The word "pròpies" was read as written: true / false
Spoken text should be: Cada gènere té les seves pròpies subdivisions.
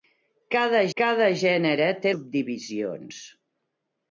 false